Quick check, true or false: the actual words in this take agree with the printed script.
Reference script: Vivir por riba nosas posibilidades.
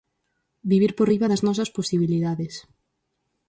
false